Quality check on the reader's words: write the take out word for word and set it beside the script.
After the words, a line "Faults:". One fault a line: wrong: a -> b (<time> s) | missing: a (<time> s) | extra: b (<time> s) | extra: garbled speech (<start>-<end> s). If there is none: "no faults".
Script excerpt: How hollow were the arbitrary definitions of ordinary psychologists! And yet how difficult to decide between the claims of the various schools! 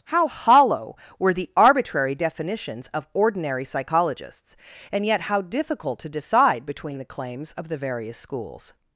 How hollow were the arbitrary definitions of ordinary psychologists! And yet how difficult to decide between the claims of the various schools!
Faults:
no faults